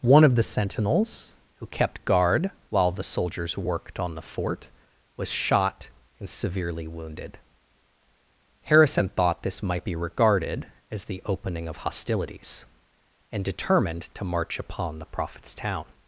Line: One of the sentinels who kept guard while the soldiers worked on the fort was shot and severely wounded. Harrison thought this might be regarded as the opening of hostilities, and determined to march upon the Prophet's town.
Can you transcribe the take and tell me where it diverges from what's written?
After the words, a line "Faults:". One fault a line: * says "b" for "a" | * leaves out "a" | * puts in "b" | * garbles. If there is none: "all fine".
One of the sentinels who kept guard while the soldiers worked on the fort was shot and severely wounded. Harrison thought this might be regarded as the opening of hostilities, and determined to march upon the Prophet's town.
Faults:
all fine